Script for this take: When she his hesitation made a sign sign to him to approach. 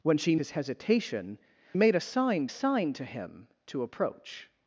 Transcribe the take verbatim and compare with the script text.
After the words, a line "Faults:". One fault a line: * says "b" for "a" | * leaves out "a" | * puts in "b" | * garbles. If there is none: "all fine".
When she his hesitation made a sign sign to him to approach.
Faults:
all fine